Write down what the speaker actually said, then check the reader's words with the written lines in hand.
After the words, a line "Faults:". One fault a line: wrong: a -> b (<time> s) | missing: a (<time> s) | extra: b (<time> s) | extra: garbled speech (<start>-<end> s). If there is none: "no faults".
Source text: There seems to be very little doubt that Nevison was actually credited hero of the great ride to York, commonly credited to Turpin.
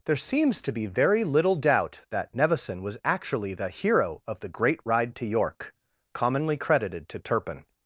There seems to be very little doubt that Nevison was actually the hero of the great ride to York, commonly credited to Turpin.
Faults:
wrong: credited -> the (3.5 s)